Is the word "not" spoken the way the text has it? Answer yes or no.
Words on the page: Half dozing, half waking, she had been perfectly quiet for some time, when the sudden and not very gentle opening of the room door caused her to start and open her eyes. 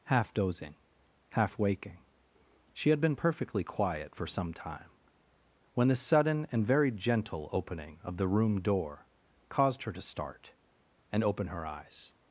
no